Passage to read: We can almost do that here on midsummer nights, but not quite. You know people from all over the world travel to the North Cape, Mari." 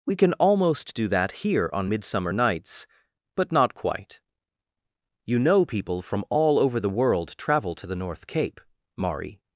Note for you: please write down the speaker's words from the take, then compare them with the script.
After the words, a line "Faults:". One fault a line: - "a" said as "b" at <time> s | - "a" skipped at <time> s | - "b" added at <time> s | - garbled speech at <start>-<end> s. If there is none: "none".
We can almost do that here on midsummer nights, but not quite. You know people from all over the world travel to the North Cape, Mari."
Faults:
none